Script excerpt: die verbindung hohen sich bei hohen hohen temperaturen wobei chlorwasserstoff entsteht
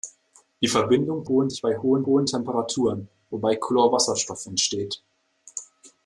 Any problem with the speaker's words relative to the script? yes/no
no